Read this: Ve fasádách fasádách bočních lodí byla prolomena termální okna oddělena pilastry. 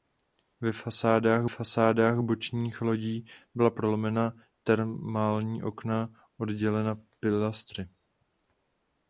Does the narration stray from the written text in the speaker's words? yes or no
no